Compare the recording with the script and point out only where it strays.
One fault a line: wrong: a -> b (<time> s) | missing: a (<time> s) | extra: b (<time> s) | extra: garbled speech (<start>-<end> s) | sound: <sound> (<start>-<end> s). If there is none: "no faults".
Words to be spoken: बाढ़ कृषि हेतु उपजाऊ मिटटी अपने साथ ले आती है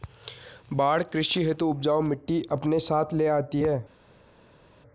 no faults